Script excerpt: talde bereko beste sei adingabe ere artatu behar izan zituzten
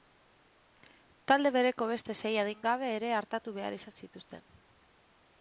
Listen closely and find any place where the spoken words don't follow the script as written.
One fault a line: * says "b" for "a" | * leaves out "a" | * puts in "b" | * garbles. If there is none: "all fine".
all fine